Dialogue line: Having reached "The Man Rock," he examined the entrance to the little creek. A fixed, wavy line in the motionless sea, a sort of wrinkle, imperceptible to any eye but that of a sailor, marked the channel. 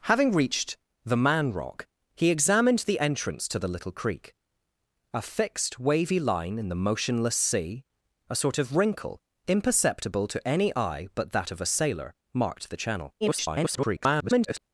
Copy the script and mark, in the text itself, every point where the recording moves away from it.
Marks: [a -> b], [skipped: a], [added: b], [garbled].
Having reached "The Man Rock," he examined the entrance to the little creek. A fixed, wavy line in the motionless sea, a sort of wrinkle, imperceptible to any eye but that of a sailor, marked the channel. [garbled]